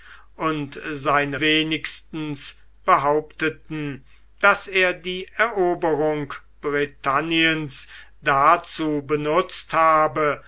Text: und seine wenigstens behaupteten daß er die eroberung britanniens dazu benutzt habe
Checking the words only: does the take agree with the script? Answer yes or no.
yes